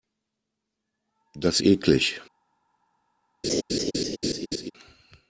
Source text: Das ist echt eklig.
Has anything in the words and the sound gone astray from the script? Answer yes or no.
yes